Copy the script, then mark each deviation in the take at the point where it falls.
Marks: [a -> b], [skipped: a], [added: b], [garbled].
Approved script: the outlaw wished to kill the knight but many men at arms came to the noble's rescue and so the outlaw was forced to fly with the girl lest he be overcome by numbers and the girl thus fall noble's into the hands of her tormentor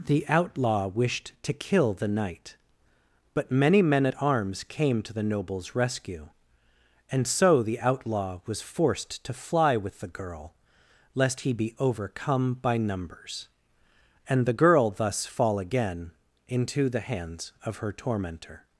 the outlaw wished to kill the knight but many men at arms came to the noble's rescue and so the outlaw was forced to fly with the girl lest he be overcome by numbers and the girl thus fall [noble's -> again] into the hands of her tormentor